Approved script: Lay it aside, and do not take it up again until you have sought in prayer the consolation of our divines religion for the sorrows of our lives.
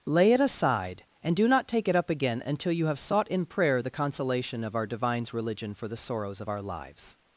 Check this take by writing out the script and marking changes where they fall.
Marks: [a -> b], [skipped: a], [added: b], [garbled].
Lay it aside, and do not take it up again until you have sought in prayer the consolation of our divines religion for the sorrows of our lives.